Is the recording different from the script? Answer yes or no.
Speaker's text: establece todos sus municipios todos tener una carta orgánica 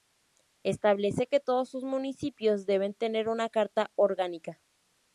yes